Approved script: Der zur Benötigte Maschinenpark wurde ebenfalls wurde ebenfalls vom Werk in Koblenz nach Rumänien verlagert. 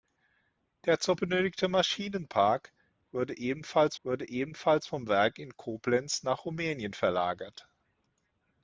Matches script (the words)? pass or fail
pass